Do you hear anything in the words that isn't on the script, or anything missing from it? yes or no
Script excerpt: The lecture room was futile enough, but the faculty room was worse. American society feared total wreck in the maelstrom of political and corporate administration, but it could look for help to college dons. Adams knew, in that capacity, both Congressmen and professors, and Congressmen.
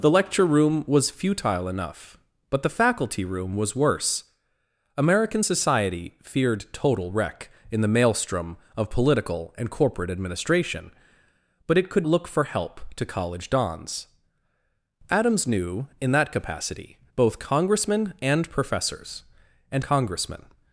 no